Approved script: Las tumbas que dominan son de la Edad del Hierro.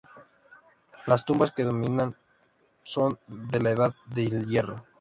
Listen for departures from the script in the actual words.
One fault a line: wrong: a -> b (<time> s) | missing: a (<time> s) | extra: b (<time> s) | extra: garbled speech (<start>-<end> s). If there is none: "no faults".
no faults